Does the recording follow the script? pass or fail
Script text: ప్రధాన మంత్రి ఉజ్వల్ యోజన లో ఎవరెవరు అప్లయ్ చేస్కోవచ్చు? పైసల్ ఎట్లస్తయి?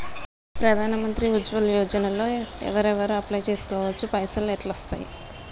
pass